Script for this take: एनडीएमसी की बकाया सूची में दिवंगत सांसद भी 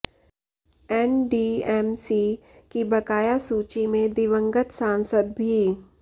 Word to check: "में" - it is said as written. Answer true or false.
true